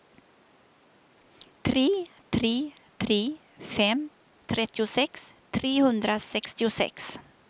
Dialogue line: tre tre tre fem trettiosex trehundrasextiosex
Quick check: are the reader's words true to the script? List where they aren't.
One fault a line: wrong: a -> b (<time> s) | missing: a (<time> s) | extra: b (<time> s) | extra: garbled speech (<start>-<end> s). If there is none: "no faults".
no faults